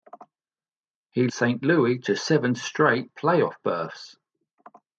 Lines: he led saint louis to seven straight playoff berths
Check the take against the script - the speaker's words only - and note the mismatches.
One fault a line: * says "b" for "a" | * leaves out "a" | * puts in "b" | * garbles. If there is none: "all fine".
* leaves out "led"